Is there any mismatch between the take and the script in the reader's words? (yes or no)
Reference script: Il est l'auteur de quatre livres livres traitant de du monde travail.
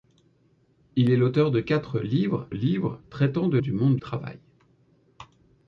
no